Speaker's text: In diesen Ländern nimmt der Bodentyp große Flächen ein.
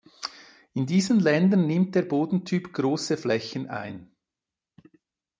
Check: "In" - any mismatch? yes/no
no